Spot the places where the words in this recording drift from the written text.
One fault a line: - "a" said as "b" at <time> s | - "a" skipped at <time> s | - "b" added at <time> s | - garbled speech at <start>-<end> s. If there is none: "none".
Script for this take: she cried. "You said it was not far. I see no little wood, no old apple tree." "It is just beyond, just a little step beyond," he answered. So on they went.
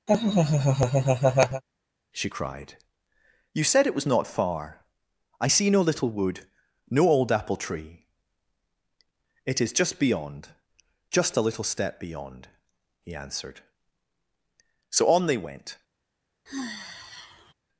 none